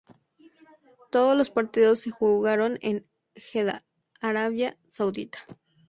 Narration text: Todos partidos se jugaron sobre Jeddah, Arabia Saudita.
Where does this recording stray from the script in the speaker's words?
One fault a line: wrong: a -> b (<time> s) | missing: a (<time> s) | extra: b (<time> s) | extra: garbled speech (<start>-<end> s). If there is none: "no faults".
extra: los (1.4 s)
wrong: sobre -> en (2.8 s)